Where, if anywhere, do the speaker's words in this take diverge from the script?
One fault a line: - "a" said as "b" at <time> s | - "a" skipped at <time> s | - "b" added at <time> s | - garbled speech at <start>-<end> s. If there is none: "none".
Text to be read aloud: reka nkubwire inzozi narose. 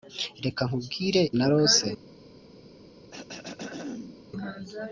- "inzozi" skipped at 1.2 s